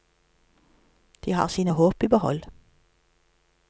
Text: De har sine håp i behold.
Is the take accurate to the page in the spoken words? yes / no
yes